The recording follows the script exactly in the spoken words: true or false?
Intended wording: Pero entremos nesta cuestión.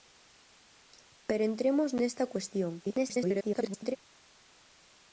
false